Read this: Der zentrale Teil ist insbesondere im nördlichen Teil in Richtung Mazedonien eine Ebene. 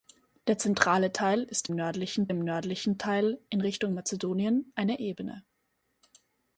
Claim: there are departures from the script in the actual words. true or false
true